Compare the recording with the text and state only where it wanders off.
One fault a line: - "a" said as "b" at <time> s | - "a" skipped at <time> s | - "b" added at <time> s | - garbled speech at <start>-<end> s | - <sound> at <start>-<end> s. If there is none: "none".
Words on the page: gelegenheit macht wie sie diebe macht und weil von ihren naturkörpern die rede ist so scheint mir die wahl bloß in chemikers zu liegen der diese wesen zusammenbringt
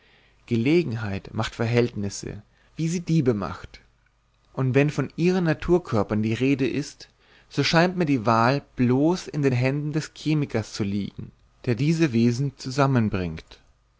- "verhältnisse" added at 1.5 s
- "weil" said as "wenn" at 4.7 s
- "den händen des" added at 9.4 s